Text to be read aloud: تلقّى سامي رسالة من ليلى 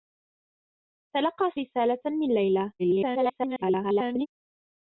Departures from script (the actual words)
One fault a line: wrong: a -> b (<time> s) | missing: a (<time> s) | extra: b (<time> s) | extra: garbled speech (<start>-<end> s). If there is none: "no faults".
missing: سامي (1.5 s)
extra: garbled speech (2.8-4.3 s)